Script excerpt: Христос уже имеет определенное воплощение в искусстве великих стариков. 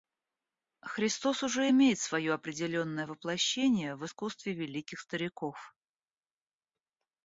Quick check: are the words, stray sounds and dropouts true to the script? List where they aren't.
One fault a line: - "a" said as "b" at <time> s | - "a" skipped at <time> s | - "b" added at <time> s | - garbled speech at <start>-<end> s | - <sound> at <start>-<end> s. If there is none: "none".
- "свое" added at 2.0 s